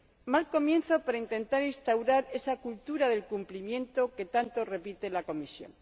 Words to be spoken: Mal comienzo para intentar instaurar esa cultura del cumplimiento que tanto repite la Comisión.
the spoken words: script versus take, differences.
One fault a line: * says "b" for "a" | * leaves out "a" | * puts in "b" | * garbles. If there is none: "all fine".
all fine